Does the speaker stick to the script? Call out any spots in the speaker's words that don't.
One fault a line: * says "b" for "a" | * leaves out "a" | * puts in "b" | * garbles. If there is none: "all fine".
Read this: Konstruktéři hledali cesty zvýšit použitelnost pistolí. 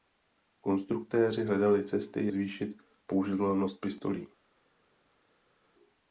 all fine